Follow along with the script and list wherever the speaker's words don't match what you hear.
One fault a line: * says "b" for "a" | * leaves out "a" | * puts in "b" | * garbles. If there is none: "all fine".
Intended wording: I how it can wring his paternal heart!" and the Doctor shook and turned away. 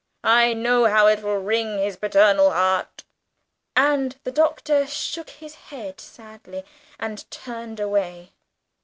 * puts in "know"
* says "will" for "can"
* puts in "his head sadly"